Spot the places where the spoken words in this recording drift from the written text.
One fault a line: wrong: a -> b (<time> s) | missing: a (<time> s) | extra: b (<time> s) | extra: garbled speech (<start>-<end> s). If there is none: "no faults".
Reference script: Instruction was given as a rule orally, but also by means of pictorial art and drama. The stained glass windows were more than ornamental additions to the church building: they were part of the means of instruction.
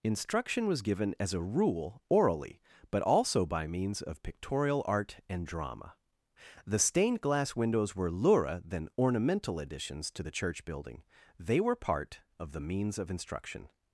wrong: more -> lura (8.1 s)